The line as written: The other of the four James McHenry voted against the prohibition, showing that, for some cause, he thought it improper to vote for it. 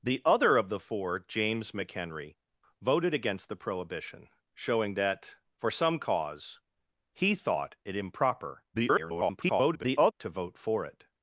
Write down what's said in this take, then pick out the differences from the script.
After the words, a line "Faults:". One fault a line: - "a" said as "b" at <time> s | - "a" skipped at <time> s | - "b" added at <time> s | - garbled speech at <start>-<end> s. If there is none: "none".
The other of the four James McHenry voted against the prohibition, showing that, for some cause, he thought it improper [garbled] to vote for it.
Faults:
- garbled speech at 8.7-10.1 s